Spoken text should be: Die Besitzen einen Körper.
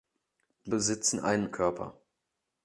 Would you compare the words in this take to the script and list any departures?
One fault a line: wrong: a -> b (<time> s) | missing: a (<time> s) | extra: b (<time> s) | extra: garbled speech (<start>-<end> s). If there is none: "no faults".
no faults